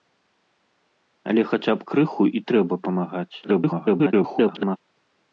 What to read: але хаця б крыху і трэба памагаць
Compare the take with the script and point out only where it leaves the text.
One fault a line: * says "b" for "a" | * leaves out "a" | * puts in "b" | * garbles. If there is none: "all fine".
* garbles